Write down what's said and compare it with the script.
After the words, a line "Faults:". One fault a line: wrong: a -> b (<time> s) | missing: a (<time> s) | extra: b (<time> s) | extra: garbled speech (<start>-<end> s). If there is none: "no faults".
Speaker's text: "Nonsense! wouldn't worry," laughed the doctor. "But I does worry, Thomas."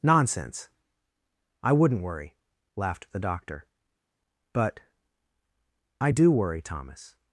"Nonsense! I wouldn't worry," laughed the doctor. "But I do worry, Thomas."
Faults:
extra: I (1.6 s)
wrong: does -> do (6.1 s)